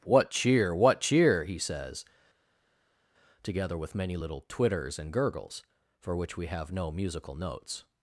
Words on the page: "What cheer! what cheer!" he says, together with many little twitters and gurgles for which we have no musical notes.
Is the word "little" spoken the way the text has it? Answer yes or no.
yes